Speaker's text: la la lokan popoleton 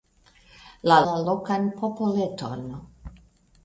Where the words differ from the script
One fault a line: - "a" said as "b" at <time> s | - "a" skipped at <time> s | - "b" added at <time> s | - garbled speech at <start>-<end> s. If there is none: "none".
none